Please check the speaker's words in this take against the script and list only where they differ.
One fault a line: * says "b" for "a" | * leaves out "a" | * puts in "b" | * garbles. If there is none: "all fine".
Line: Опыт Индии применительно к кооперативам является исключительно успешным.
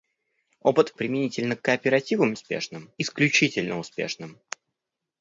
* leaves out "Индии"
* says "успешным" for "является"